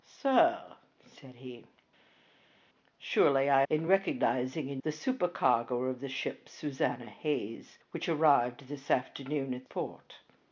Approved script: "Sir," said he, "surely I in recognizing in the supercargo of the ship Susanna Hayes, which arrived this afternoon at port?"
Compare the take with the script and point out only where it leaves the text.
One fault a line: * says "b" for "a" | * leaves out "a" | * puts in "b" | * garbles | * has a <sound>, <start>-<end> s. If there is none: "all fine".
all fine